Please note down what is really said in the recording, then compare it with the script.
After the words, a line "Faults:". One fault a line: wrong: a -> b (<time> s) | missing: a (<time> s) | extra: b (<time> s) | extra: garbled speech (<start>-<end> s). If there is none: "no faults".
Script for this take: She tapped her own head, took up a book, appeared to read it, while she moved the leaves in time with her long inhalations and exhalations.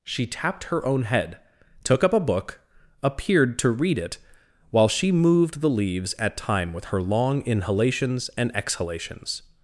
She tapped her own head, took up a book, appeared to read it, while she moved the leaves at time with her long inhalations and exhalations.
Faults:
wrong: in -> at (6.2 s)